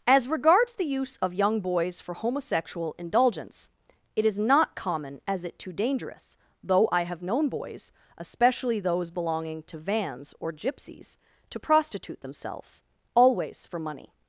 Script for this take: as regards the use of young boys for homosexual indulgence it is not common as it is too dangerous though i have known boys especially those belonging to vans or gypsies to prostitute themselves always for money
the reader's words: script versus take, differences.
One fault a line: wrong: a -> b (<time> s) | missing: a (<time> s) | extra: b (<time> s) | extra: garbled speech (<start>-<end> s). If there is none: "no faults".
missing: is (5.6 s)